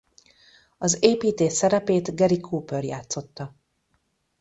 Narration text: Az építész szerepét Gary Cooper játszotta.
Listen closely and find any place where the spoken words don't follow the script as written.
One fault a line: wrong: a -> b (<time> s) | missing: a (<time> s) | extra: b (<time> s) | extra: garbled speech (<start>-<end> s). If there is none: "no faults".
no faults